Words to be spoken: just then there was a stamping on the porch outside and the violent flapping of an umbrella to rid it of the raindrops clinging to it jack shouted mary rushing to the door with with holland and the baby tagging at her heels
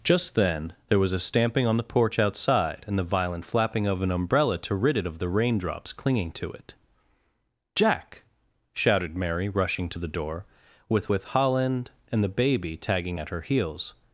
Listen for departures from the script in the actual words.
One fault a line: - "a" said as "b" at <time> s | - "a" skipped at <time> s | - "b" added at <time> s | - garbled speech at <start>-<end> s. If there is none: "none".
none